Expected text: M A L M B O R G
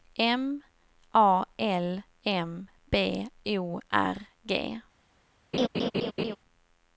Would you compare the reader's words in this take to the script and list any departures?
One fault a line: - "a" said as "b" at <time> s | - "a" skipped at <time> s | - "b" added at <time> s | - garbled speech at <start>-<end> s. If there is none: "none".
none